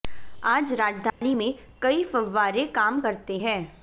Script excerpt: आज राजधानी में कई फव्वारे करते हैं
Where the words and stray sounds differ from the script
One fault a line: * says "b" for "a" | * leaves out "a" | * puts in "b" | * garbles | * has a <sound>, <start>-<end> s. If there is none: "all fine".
* has a dropout, 1.1-1.2 s
* puts in "काम"